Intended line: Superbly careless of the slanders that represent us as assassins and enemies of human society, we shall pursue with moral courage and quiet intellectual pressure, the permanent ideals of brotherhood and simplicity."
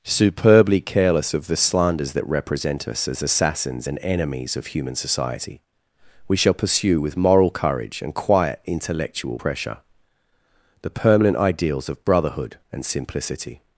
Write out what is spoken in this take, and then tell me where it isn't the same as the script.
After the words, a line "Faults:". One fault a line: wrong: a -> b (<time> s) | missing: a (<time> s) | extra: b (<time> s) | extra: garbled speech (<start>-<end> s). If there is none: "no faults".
Superbly careless of the slanders that represent us as assassins and enemies of human society, we shall pursue with moral courage and quiet intellectual pressure, the permanent ideals of brotherhood and simplicity."
Faults:
no faults